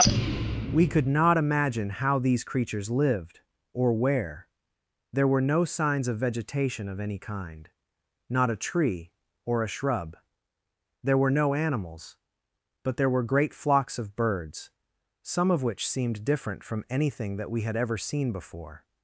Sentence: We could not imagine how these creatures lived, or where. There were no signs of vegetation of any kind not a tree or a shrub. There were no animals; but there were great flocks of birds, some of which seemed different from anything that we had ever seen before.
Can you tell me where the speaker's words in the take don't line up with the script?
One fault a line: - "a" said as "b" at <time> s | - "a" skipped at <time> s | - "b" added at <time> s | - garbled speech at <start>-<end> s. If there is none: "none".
none